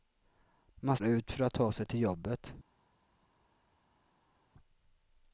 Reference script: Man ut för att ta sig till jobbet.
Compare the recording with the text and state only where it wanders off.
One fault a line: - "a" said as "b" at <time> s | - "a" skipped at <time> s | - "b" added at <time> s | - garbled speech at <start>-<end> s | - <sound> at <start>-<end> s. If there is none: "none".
none